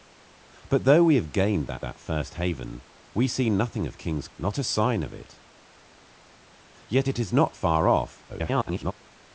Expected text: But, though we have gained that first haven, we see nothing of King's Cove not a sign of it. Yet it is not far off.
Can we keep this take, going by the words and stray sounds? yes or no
no